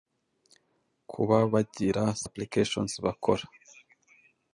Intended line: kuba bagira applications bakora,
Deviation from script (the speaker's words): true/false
false